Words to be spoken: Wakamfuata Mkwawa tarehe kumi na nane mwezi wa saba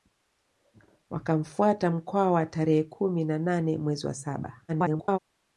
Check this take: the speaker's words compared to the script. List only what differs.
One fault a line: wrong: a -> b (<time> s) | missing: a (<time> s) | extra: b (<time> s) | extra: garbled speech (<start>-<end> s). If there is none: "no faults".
extra: garbled speech (4.7-5.2 s)